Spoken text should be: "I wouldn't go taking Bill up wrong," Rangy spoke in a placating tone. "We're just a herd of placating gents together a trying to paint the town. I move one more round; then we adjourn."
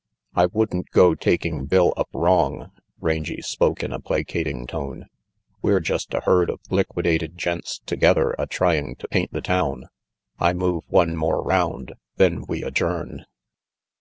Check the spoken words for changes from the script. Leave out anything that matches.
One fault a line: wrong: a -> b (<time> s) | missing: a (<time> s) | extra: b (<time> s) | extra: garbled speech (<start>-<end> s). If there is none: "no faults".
wrong: placating -> liquidated (6.7 s)